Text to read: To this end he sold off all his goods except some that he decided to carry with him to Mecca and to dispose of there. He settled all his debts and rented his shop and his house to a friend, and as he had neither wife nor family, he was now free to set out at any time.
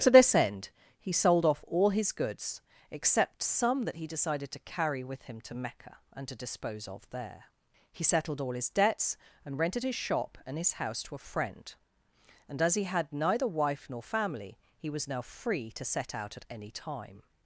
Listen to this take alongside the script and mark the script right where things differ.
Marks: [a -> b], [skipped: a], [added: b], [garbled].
To this end he sold off all his goods except some that he decided to carry with him to Mecca and to dispose of there. He settled all his debts and rented his shop and his house to a friend, and as he had neither wife nor family, he was now free to set out at any time.